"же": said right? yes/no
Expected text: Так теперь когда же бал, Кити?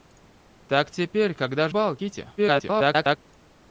no